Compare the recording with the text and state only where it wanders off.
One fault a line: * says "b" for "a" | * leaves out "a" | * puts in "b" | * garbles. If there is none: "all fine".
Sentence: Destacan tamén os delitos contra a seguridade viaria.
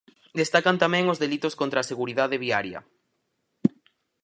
all fine